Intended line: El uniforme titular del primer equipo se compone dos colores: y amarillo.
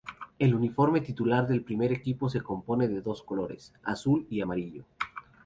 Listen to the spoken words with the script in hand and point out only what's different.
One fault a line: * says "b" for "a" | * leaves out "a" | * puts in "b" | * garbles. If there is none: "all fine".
* puts in "de"
* puts in "azul"